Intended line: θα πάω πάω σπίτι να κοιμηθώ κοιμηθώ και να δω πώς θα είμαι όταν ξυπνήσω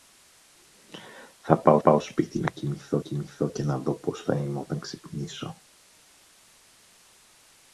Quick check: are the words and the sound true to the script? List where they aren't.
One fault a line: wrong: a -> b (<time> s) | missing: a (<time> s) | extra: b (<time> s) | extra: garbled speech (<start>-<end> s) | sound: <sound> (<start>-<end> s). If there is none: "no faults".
no faults